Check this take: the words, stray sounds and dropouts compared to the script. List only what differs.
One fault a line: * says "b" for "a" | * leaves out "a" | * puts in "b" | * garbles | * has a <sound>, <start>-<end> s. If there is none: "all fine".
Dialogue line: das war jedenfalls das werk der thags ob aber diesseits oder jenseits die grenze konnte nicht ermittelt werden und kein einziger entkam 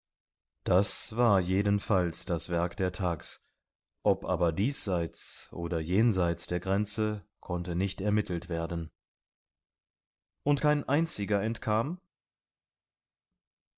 * says "der" for "die"